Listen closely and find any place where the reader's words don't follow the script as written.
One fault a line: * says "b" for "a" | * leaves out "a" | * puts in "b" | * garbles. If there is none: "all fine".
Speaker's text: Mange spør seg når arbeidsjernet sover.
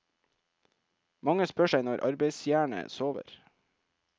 all fine